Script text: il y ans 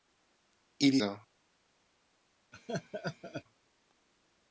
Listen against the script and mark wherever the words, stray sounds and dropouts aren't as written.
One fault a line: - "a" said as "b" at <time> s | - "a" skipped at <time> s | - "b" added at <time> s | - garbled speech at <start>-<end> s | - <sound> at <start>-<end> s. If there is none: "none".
- laugh at 2.5-3.4 s